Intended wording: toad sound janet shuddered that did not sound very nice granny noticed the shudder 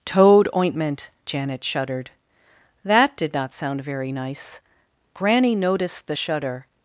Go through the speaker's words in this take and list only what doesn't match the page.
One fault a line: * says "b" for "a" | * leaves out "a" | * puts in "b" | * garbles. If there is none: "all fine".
* says "ointment" for "sound"